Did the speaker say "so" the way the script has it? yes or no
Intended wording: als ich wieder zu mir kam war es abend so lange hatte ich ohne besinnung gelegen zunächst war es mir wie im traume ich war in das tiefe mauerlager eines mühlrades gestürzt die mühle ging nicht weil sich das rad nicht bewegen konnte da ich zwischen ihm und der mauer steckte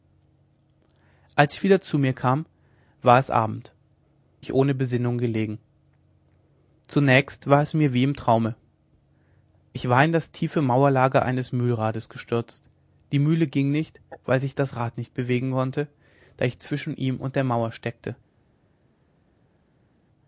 no